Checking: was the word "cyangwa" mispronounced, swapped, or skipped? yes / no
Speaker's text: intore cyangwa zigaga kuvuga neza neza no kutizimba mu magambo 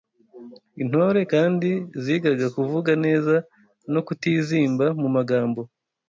yes